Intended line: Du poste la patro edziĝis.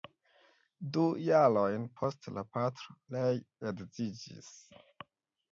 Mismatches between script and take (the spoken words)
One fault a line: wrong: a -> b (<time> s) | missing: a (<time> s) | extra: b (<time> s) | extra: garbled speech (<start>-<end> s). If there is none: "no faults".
extra: jarojn (1.2 s)
extra: ree (3.2 s)